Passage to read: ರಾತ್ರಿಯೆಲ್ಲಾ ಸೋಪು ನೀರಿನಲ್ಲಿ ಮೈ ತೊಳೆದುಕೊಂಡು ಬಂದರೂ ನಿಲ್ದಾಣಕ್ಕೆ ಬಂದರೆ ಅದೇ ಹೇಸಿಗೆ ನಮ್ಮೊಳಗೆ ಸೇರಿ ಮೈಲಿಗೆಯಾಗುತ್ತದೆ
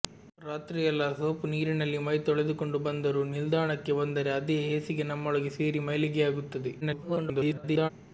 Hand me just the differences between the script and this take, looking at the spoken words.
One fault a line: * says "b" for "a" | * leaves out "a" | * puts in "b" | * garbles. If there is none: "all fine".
* garbles